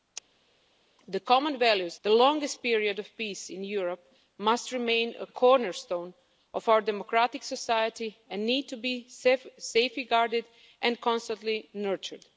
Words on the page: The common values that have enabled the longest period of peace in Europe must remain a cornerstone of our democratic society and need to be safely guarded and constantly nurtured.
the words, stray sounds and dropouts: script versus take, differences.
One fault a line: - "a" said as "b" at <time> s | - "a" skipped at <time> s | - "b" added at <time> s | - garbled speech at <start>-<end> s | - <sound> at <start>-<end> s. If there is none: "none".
- "that have enabled" skipped at 2.0 s